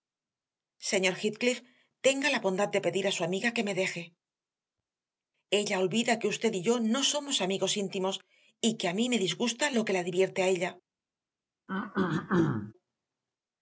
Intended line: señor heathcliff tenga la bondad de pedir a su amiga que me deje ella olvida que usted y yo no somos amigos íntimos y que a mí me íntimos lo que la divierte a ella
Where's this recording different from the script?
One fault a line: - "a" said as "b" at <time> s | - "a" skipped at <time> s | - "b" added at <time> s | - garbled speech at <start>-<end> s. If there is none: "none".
- "íntimos" said as "disgusta" at 9.2 s